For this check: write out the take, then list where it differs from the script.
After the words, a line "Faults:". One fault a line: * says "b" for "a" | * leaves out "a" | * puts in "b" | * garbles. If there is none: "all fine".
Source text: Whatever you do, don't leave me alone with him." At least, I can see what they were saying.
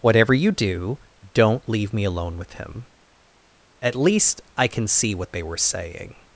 Whatever you do, don't leave me alone with him." At least, I can see what they were saying.
Faults:
all fine